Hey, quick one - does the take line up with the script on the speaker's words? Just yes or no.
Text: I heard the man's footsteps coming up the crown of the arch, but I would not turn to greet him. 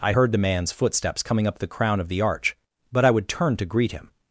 no